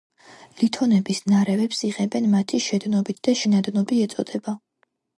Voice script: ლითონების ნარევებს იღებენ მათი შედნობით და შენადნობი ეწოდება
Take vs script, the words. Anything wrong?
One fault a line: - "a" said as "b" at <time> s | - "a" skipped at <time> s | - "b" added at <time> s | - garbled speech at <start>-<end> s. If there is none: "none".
none